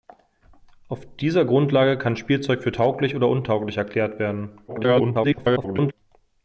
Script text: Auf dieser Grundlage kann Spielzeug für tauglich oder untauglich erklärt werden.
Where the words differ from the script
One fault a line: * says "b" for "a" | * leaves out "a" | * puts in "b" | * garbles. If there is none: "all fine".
* garbles